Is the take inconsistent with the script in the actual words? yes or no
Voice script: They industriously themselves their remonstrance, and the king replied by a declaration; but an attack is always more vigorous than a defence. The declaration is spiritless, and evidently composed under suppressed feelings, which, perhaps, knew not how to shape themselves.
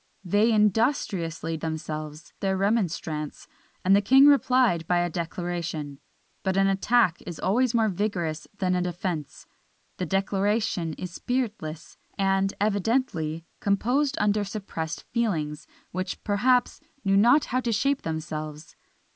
no